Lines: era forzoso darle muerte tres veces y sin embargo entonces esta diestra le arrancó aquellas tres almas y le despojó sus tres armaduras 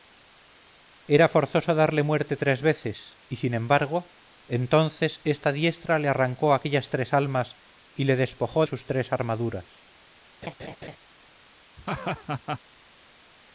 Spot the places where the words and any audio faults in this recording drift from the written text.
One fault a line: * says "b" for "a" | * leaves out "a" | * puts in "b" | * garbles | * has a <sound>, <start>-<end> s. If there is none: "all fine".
* has a laugh, 10.4-11.0 s
* has a laugh, 11.8-12.6 s